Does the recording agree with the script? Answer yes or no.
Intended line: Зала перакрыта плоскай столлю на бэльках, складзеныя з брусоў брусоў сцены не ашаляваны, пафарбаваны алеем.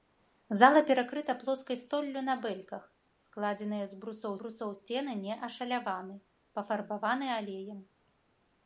yes